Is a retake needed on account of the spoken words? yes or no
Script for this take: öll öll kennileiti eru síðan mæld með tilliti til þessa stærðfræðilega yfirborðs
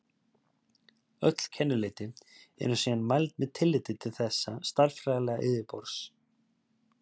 yes